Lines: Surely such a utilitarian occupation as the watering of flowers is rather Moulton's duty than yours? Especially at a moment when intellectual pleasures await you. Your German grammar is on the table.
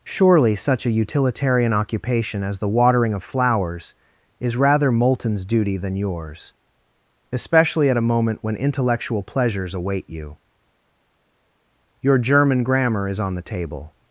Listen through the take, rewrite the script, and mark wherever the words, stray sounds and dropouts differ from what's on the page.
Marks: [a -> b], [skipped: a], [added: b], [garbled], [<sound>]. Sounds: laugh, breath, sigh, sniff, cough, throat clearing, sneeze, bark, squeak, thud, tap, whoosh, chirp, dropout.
Surely such a utilitarian occupation as the watering of flowers is rather Moulton's duty than yours? Especially at a moment when intellectual pleasures await you. Your German grammar is on the table.